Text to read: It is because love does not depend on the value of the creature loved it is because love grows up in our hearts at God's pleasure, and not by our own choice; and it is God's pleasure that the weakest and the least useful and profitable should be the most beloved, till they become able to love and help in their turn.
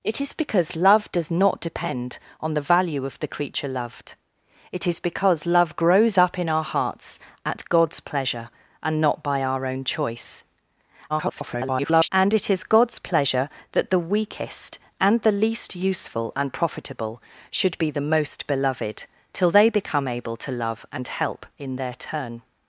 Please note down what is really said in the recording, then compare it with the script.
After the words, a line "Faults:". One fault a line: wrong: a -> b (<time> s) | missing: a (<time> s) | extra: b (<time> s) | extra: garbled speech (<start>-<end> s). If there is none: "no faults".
It is because love does not depend on the value of the creature loved it is because love grows up in our hearts at God's pleasure, and not by our own choice; [garbled] and it is God's pleasure that the weakest and the least useful and profitable should be the most beloved, till they become able to love and help in their turn.
Faults:
extra: garbled speech (11.1-12.1 s)